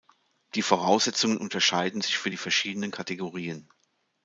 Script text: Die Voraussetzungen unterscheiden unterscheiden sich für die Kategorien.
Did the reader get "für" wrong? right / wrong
right